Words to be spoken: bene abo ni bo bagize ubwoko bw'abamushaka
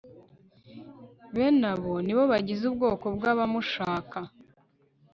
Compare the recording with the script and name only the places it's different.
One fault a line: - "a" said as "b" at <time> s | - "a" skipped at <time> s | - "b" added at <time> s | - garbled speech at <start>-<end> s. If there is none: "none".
none